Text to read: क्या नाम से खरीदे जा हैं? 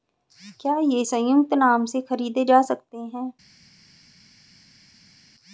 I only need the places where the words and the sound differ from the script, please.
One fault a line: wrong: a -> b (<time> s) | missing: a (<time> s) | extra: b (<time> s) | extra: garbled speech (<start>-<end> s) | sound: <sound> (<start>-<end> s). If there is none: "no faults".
extra: ये संयुक्त (0.8 s)
extra: सकते (2.6 s)